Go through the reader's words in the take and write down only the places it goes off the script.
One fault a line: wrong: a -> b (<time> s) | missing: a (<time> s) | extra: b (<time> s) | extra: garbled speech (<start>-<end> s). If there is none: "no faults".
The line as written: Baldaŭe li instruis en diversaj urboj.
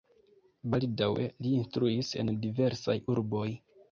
no faults